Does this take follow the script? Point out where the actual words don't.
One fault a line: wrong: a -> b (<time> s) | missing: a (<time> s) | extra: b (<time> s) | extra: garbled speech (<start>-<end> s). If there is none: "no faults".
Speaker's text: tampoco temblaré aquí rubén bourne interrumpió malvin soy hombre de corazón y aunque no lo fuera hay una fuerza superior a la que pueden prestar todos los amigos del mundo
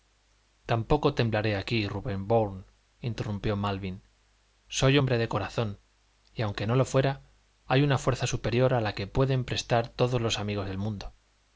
no faults